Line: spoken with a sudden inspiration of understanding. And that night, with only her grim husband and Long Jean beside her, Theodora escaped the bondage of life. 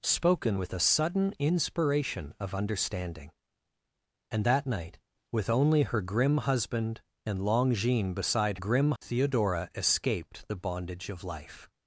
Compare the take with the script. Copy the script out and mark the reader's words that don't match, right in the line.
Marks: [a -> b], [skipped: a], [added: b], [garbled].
spoken with a sudden inspiration of understanding. And that night, with only her grim husband and Long Jean beside [her, -> grim] Theodora escaped the bondage of life.